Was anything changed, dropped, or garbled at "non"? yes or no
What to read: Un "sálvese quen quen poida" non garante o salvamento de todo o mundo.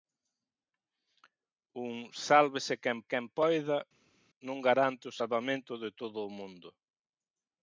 no